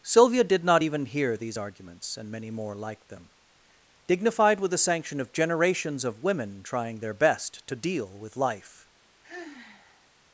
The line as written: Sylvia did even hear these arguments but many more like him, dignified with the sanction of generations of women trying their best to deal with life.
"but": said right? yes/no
no